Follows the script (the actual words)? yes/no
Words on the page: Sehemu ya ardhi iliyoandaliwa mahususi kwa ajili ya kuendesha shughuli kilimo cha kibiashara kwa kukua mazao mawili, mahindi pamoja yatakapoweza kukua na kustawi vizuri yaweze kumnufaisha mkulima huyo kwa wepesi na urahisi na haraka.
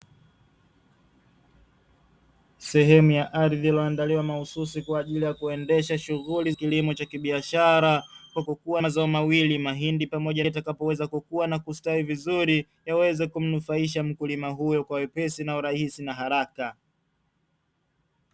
yes